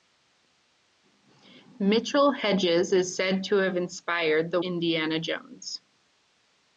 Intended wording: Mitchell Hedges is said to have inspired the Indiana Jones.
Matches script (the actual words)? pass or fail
pass